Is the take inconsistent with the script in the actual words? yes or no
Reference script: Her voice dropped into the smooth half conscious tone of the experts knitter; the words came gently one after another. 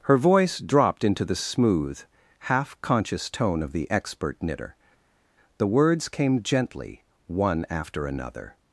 yes